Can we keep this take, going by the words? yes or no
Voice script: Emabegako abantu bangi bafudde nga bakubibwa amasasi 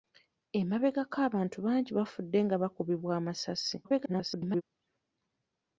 no